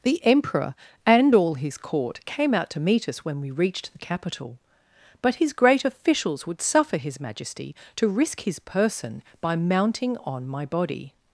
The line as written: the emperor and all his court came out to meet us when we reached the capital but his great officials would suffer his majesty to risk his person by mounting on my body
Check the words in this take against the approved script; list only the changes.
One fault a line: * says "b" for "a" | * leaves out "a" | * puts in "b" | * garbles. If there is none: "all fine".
all fine